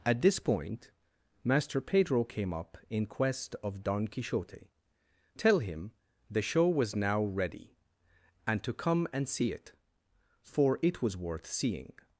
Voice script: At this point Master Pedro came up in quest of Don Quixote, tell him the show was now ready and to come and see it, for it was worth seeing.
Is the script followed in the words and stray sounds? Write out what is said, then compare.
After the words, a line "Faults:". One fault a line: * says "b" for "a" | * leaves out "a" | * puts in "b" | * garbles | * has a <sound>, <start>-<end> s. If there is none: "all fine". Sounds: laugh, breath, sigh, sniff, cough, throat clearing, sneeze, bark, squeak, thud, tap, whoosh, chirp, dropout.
At this point Master Pedro came up in quest of Don Quixote, tell him the show was now ready and to come and see it, for it was worth seeing.
Faults:
all fine